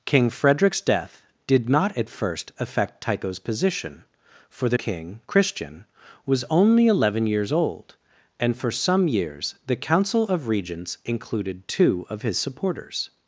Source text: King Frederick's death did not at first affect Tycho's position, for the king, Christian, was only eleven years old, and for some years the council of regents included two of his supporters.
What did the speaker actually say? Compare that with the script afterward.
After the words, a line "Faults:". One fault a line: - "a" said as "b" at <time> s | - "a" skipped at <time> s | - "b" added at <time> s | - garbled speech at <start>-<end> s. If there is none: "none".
King Frederick's death did not at first affect Tycho's position, for the king, Christian, was only eleven years old, and for some years the council of regents included two of his supporters.
Faults:
none